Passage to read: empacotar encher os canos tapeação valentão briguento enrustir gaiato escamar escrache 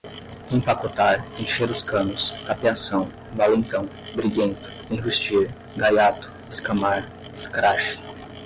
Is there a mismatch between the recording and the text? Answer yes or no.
no